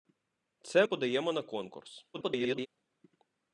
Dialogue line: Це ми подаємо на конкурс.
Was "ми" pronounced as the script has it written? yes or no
no